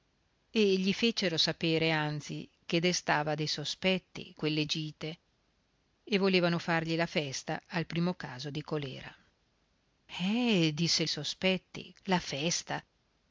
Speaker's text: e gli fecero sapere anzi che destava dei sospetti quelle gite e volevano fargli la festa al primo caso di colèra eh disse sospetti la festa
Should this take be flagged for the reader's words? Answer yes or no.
no